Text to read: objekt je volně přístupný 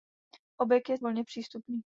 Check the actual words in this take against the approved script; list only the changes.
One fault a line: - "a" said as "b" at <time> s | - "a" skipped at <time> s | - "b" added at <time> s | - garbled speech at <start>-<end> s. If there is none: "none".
none